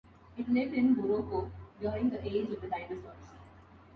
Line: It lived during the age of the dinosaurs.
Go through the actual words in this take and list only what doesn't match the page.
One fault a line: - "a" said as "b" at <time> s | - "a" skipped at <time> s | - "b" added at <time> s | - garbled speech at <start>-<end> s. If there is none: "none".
- "in Morocco" added at 0.7 s